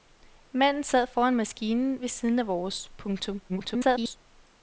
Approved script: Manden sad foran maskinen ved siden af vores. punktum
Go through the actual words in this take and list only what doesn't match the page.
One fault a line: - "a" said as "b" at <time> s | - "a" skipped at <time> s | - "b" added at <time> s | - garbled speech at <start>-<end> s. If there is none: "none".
- garbled speech at 3.5-4.2 s